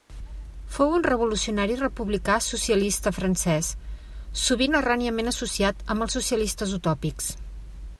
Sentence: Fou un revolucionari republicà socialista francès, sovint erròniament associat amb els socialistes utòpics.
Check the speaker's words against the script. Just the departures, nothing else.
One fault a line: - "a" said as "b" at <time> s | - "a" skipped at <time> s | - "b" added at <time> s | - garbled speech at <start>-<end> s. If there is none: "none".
none